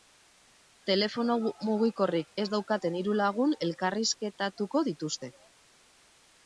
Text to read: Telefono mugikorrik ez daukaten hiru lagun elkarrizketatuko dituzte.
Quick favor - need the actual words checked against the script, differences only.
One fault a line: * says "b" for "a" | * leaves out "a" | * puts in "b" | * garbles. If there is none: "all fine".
all fine